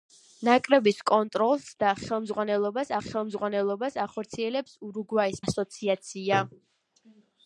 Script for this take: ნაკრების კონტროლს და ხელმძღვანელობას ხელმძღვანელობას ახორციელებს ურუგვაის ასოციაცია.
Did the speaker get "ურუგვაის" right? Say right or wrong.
right